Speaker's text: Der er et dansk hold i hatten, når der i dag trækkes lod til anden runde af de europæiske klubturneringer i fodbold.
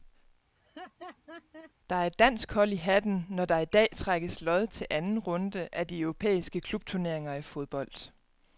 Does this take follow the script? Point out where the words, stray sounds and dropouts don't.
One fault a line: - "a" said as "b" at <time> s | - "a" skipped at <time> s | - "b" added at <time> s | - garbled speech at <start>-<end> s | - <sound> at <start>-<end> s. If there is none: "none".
- laugh at 0.6-1.7 s